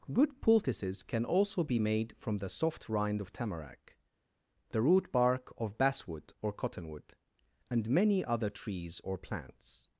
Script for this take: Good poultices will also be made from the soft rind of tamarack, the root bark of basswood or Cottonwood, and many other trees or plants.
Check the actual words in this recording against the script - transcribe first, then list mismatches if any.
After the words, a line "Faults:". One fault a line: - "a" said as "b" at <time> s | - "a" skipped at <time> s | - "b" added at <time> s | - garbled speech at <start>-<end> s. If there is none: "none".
Good poultices can also be made from the soft rind of tamarack, the root bark of basswood or Cottonwood, and many other trees or plants.
Faults:
- "will" said as "can" at 1.0 s